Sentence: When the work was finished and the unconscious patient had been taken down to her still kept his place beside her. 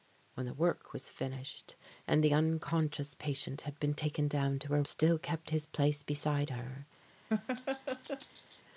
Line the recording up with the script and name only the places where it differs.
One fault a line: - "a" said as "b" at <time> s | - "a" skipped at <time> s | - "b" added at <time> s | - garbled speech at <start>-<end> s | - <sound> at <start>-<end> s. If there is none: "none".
- laugh at 7.3-8.6 s